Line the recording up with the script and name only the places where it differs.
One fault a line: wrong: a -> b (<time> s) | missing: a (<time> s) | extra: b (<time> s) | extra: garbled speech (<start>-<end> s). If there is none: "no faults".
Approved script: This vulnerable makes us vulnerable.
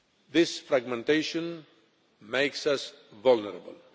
wrong: vulnerable -> fragmentation (0.6 s)